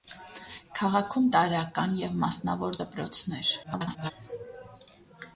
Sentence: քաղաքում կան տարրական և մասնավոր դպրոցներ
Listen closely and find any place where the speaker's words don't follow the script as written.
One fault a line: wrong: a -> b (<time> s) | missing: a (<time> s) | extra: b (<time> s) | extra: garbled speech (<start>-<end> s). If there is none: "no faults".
missing: կան (1.3 s)
extra: garbled speech (3.6-4.1 s)